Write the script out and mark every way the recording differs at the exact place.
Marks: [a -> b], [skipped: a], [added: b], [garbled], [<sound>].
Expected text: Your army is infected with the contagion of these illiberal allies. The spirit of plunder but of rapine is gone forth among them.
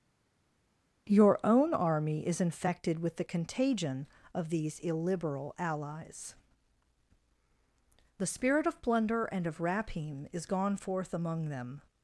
Your [added: own] army is infected with the contagion of these illiberal allies. The spirit of plunder [but -> and] of rapine is gone forth among them.